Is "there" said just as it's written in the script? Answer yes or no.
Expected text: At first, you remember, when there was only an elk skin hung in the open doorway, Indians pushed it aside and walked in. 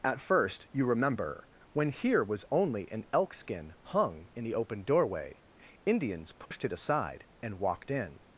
no